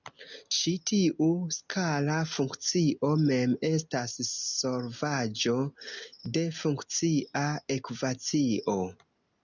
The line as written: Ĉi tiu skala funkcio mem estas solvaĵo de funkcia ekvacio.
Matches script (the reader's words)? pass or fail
pass